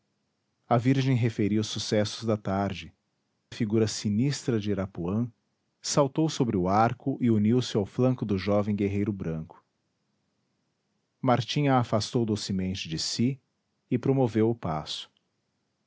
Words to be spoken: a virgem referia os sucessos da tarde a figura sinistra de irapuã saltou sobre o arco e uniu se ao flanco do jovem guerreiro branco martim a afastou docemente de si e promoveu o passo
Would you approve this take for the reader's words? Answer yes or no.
yes